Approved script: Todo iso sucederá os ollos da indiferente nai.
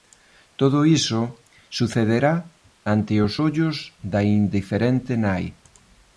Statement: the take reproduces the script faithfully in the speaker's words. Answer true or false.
false